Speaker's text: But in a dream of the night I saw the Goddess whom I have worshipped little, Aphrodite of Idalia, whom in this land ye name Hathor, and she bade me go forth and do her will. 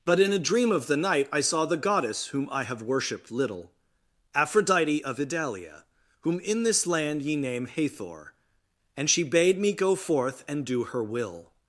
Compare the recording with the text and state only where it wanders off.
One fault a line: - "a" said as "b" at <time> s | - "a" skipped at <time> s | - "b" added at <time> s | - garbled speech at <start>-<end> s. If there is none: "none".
none